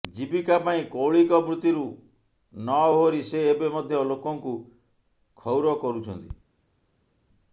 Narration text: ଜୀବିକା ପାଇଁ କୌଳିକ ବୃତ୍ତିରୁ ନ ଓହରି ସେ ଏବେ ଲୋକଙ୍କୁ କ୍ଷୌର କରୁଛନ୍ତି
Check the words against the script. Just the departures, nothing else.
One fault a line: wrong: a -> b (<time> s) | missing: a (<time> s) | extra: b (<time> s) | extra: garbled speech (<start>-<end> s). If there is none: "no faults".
extra: ମଧ୍ୟ (3.8 s)